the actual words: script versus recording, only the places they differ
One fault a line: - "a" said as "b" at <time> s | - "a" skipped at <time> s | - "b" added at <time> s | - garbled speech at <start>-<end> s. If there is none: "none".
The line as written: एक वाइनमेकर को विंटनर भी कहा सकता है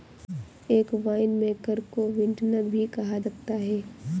none